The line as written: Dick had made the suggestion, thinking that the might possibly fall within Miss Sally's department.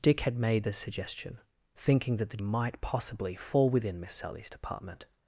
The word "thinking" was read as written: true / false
true